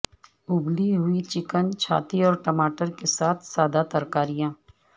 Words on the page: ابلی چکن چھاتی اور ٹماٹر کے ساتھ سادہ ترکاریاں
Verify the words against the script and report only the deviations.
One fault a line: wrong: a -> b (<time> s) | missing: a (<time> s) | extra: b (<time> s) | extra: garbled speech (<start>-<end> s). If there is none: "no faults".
extra: ہوئی (1.0 s)